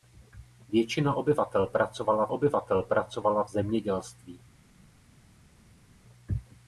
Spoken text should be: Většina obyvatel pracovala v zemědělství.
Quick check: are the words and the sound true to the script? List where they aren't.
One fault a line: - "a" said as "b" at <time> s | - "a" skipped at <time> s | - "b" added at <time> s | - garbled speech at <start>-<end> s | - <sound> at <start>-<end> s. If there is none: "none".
- "obyvatel pracovala" added at 2.3 s